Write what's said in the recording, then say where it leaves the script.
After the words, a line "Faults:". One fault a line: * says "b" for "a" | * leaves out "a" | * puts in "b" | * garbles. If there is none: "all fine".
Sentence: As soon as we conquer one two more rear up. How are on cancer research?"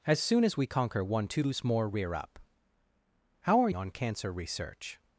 As soon as we conquer one two more rear up. How are on cancer research?"
Faults:
all fine